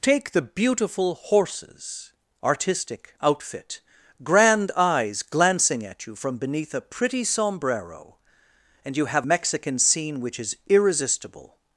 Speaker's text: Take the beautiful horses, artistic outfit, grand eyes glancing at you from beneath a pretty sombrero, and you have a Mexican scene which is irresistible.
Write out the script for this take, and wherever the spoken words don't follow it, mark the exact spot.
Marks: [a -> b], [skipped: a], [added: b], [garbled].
Take the beautiful horses, artistic outfit, grand eyes glancing at you from beneath a pretty sombrero, and you have [skipped: a] Mexican scene which is irresistible.